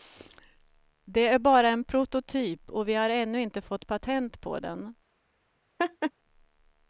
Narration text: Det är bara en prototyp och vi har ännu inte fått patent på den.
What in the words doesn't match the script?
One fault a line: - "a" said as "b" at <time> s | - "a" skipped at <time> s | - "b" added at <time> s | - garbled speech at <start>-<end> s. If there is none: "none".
none